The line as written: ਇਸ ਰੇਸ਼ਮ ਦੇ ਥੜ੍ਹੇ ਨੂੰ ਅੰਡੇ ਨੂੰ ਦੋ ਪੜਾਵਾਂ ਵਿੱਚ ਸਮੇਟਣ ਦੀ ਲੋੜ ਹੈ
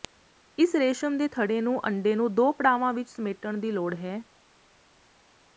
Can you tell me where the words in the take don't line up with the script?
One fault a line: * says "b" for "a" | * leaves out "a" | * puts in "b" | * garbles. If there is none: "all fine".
all fine